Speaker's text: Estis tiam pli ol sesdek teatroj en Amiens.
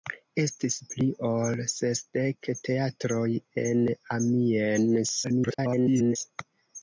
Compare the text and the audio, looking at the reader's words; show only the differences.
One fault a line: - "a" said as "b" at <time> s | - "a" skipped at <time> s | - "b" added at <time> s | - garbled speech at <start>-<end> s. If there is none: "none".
- "tiam" skipped at 0.8 s
- garbled speech at 5.2-6.2 s